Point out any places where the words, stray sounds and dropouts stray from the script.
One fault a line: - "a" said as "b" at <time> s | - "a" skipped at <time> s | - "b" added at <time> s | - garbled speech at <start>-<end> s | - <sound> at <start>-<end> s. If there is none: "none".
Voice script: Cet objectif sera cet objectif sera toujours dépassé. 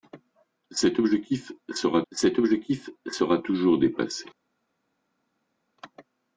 none